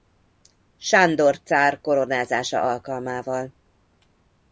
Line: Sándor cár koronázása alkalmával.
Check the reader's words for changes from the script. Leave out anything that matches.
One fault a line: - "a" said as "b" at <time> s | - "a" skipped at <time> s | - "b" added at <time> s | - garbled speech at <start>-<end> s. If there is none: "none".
none